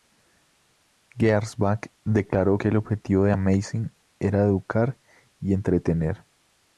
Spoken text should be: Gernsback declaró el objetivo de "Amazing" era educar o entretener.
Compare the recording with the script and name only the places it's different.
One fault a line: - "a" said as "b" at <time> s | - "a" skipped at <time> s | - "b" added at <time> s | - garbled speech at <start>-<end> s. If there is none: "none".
- "que" added at 2.5 s
- "o" said as "y" at 5.4 s